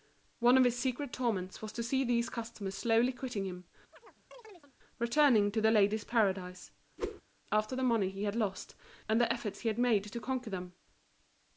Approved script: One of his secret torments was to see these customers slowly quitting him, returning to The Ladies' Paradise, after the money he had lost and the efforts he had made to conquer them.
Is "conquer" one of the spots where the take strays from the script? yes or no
no